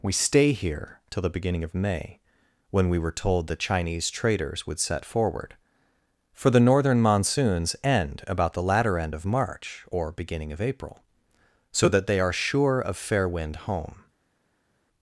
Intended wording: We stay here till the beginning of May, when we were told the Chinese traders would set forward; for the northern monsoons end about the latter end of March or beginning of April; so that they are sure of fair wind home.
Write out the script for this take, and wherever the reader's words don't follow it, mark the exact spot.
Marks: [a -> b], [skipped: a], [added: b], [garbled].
We stay here till the beginning of May, when we were told the Chinese traders would set forward; for the northern monsoons end about the latter end of March or beginning of April; so that they are sure of fair wind home.